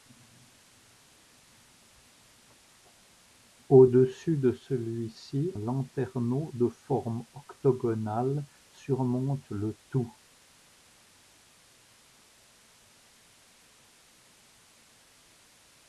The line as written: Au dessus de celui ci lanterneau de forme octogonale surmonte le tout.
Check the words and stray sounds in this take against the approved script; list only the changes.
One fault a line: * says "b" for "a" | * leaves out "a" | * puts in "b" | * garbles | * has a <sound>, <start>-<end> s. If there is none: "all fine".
all fine